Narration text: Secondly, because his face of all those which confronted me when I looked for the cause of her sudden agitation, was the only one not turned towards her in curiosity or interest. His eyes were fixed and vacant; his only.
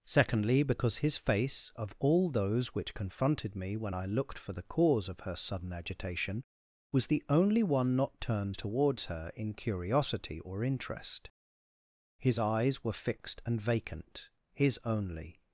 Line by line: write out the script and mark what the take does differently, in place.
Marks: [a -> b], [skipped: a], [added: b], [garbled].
Secondly, because his face of all those which confronted me when I looked for the cause of her sudden agitation, was the only one not turned towards her in curiosity or interest. His eyes were fixed and vacant; his only.